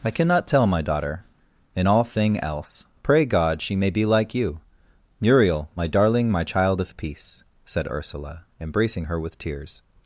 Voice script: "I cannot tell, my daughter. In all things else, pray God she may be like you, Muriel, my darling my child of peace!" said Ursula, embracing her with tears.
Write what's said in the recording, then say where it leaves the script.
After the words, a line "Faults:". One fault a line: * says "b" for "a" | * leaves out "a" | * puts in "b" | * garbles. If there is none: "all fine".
"I cannot tell, my daughter. In all thing else, pray God she may be like you, Muriel, my darling my child of peace!" said Ursula, embracing her with tears.
Faults:
* says "thing" for "things"